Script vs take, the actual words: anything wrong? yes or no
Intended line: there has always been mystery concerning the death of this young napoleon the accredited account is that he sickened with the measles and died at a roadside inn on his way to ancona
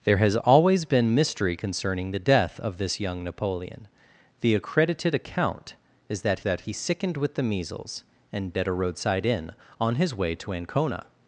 yes